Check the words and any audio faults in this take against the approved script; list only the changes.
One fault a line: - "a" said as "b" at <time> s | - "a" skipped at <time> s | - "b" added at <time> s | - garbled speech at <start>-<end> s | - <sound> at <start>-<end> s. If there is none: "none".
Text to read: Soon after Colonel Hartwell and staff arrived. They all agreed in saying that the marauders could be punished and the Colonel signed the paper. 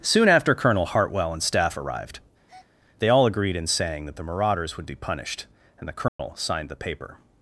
- breath at 2.5-2.7 s
- "could" said as "would" at 4.8 s
- dropout at 6.1-6.2 s